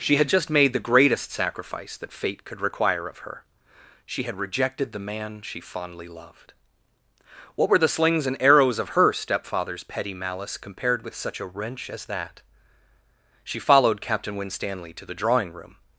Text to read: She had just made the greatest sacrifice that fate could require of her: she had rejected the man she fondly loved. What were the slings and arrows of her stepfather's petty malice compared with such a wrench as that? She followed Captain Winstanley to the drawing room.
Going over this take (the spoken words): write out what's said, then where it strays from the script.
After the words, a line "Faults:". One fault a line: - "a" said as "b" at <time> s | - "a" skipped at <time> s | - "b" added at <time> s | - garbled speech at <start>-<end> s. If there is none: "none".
She had just made the greatest sacrifice that fate could require of her: she had rejected the man she fondly loved. What were the slings and arrows of her stepfather's petty malice compared with such a wrench as that? She followed Captain Winstanley to the drawing room.
Faults:
none